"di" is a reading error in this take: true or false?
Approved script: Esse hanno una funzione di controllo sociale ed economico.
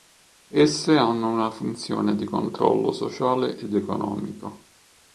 false